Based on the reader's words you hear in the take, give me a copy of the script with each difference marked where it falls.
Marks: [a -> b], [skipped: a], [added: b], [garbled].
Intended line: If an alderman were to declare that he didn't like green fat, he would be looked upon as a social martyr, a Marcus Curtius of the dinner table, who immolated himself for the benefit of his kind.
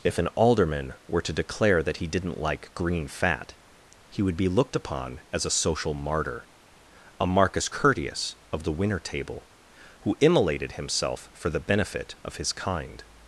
If an alderman were to declare that he didn't like green fat, he would be looked upon as a social martyr, a Marcus Curtius of the [dinner -> winner] table, who immolated himself for the benefit of his kind.